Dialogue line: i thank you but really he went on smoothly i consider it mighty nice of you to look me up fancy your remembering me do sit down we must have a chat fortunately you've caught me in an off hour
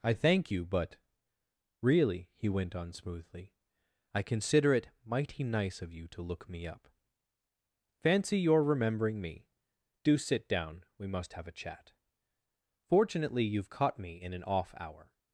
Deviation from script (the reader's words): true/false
false